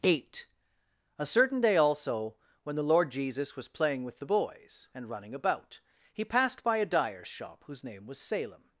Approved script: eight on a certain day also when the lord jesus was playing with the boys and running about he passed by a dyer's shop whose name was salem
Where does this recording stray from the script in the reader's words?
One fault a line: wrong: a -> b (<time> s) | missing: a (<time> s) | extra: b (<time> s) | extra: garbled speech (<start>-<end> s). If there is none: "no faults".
missing: on (0.5 s)